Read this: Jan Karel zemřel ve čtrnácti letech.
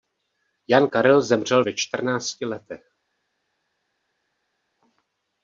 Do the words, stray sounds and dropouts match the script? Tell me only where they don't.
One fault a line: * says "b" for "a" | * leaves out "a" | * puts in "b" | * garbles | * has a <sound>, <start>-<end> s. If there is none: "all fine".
all fine